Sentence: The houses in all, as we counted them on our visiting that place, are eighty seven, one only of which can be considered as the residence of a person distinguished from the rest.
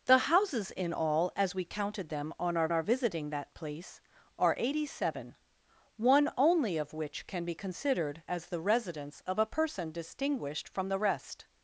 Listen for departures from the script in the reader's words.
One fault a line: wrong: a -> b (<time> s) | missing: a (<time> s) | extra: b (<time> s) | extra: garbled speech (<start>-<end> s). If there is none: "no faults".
extra: our (2.7 s)